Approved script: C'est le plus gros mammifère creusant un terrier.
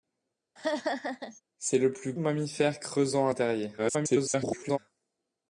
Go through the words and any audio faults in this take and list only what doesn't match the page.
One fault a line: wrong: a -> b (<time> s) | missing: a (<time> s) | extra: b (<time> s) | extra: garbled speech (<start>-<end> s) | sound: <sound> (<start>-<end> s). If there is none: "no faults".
sound: laugh (0.6-1.4 s)
missing: gros (2.1 s)
extra: garbled speech (3.8-4.8 s)